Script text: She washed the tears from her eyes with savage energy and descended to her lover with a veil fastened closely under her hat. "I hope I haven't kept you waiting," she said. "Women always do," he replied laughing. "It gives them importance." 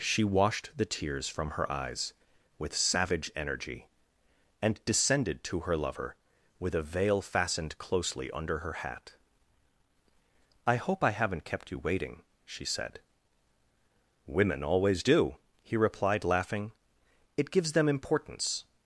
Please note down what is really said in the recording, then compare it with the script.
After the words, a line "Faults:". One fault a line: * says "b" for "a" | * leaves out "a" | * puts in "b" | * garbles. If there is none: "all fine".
She washed the tears from her eyes with savage energy and descended to her lover with a veil fastened closely under her hat. "I hope I haven't kept you waiting," she said. "Women always do," he replied laughing. "It gives them importance."
Faults:
all fine